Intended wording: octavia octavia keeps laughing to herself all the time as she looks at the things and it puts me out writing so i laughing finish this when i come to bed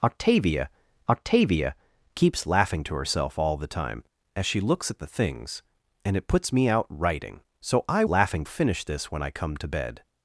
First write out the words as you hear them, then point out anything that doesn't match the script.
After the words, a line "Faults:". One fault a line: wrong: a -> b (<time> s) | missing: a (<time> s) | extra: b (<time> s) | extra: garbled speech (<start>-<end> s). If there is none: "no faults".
octavia octavia keeps laughing to herself all the time as she looks at the things and it puts me out writing so i laughing finish this when i come to bed
Faults:
no faults